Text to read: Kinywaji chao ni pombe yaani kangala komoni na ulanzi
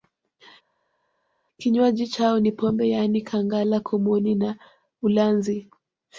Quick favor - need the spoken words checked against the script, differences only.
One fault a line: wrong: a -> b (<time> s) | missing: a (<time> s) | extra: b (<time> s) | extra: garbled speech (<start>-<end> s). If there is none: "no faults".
no faults